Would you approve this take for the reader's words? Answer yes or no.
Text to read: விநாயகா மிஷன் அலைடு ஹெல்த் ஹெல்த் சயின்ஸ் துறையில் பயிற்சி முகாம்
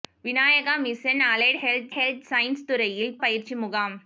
yes